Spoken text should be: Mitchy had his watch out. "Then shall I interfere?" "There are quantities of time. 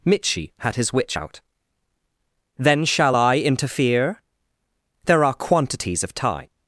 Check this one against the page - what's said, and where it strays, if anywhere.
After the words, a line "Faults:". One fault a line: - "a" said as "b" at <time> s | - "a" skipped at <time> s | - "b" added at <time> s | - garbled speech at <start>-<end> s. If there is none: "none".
Mitchy had his witch out. "Then shall I interfere?" "There are quantities of time.
Faults:
- "watch" said as "witch" at 0.9 s